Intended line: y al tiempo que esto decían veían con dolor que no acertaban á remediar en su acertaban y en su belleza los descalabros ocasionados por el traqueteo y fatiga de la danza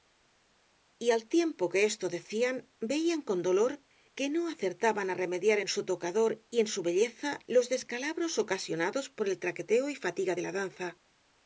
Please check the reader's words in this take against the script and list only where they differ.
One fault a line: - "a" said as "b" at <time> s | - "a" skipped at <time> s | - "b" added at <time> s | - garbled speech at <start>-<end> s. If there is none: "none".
- "acertaban" said as "tocador" at 5.9 s